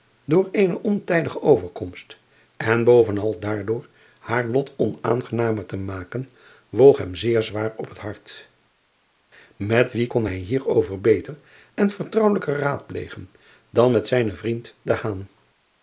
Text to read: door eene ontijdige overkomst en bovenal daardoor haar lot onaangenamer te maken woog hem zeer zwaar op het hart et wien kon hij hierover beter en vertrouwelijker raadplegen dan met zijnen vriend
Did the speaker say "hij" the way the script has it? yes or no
yes